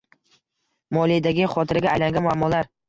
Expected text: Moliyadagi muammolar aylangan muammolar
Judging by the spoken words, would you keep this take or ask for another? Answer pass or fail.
fail